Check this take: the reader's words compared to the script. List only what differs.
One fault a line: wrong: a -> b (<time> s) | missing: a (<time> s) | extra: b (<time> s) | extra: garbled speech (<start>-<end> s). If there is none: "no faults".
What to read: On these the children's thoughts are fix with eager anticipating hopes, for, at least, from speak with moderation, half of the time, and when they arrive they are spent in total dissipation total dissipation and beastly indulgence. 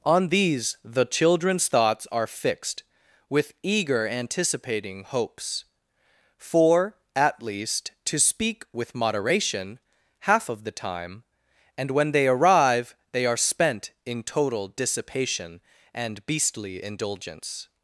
wrong: fix -> fixed (2.3 s)
wrong: from -> to (8.1 s)
missing: total dissipation (15.6 s)